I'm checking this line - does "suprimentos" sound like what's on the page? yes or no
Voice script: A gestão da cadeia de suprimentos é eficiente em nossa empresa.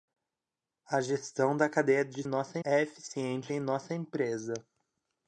no